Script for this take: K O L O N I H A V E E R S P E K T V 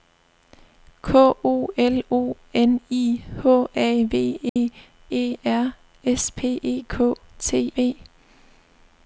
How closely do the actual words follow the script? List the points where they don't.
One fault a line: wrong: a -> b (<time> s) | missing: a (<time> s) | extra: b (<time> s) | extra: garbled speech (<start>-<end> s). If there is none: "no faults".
no faults